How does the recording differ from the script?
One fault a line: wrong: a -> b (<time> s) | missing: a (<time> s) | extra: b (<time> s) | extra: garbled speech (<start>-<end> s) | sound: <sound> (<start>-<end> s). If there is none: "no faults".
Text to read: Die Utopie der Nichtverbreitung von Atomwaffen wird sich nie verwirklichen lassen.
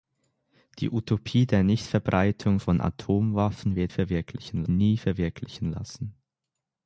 wrong: sich -> verwirklichen (3.9 s)